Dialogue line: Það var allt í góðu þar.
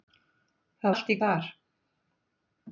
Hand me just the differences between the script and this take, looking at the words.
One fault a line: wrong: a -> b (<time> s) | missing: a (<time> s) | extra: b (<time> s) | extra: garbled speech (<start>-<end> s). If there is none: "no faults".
missing: var (0.9 s)
missing: góðu (1.2 s)